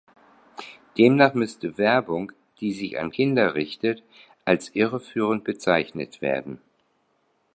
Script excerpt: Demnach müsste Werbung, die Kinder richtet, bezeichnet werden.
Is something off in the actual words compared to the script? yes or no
yes